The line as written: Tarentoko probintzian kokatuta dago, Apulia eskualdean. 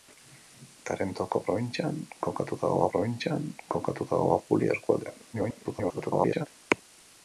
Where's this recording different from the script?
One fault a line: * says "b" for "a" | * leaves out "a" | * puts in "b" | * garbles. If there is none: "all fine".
* puts in "probintzian kokatuta dago"
* garbles